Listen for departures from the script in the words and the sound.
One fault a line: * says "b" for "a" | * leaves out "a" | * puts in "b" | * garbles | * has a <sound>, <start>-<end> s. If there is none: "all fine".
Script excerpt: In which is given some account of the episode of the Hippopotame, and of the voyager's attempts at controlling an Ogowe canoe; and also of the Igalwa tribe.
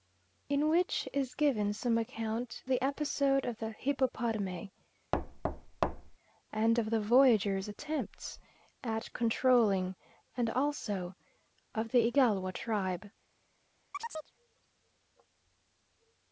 * leaves out "of"
* has a thud, 5.1-6.2 s
* leaves out "an Ogowe canoe"
* has a chirp, 13.9-14.3 s